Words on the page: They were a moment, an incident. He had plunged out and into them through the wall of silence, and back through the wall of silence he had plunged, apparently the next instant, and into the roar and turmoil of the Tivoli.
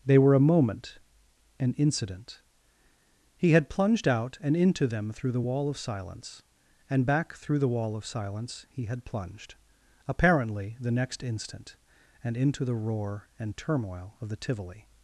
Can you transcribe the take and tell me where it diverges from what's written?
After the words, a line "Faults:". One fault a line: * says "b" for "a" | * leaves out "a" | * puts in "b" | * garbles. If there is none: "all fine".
They were a moment, an incident. He had plunged out and into them through the wall of silence, and back through the wall of silence he had plunged, apparently the next instant, and into the roar and turmoil of the Tivoli.
Faults:
all fine